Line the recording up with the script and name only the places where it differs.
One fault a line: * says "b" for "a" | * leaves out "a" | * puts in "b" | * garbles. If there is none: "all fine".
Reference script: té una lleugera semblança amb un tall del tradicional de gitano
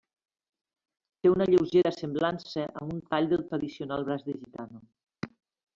* puts in "braç"